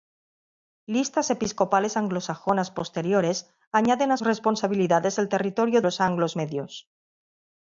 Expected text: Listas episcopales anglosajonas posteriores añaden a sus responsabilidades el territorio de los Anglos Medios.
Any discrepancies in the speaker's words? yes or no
yes